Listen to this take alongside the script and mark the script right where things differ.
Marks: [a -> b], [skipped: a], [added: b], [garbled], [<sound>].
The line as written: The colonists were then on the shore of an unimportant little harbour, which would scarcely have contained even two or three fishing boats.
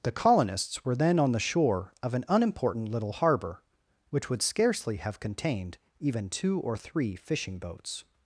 The colonists were then on the shore of an unimportant little harbour, which would scarcely have contained even two or three fishing boats.